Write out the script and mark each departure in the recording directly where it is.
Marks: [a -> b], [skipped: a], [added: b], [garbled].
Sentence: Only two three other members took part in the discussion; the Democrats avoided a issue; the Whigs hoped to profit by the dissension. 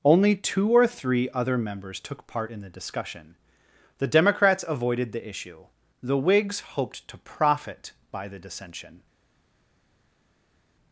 Only two [added: or] three other members took part in the discussion; the Democrats avoided [a -> the] issue; the Whigs hoped to profit by the dissension.